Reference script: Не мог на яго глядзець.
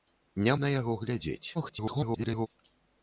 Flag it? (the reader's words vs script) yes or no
yes